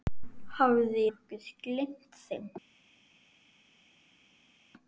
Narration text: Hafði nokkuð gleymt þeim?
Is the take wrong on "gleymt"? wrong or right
right